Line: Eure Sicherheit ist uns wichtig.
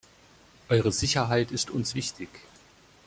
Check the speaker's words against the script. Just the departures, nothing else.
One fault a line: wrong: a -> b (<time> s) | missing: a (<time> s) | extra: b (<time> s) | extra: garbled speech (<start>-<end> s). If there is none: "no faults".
no faults